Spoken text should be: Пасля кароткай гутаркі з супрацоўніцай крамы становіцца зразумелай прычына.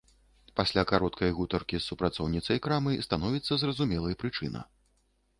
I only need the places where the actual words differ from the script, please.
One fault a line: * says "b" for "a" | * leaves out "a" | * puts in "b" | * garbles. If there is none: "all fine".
all fine